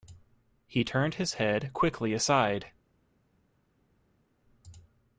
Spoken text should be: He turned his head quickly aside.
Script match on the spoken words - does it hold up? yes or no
yes